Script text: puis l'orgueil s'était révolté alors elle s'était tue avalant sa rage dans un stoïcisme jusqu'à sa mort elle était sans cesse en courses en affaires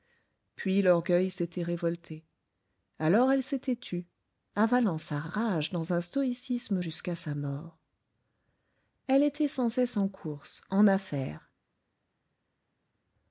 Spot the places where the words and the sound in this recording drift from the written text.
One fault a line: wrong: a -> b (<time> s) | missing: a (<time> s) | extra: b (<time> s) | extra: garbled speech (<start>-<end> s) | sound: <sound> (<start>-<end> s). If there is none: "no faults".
no faults